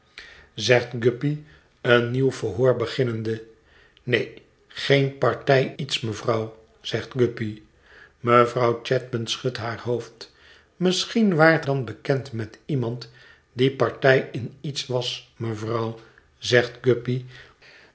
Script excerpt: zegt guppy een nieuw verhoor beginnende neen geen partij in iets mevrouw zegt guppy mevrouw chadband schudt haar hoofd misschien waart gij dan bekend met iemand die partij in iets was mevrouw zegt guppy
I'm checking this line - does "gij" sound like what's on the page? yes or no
no